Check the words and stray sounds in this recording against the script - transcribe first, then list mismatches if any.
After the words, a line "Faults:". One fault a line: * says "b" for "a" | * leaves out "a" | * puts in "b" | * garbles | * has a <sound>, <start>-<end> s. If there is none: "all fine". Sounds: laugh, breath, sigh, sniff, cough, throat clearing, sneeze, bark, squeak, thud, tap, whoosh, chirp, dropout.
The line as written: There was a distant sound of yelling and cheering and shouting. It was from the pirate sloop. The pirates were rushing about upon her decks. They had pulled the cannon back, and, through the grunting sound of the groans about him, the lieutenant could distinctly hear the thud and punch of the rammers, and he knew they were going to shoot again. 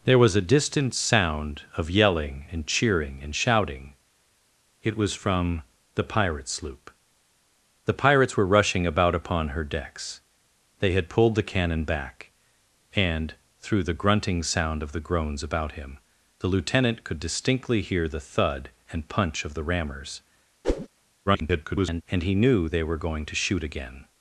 There was a distant sound of yelling and cheering and shouting. It was from the pirate sloop. The pirates were rushing about upon her decks. They had pulled the cannon back, and, through the grunting sound of the groans about him, the lieutenant could distinctly hear the thud and punch of the rammers, [garbled] and he knew they were going to shoot again.
Faults:
* has a whoosh, 20.6-20.9 s
* garbles